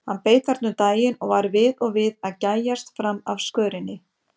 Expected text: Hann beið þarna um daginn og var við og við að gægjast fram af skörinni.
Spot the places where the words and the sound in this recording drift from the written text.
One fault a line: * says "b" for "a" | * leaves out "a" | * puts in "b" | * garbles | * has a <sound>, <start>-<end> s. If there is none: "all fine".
all fine